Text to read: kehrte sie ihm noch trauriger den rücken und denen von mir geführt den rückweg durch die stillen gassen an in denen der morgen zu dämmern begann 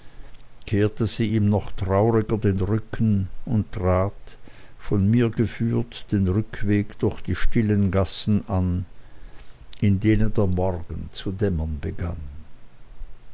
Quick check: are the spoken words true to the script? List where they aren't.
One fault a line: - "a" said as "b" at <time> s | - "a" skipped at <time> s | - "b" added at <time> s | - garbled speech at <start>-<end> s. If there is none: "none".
- "denen" said as "trat" at 3.7 s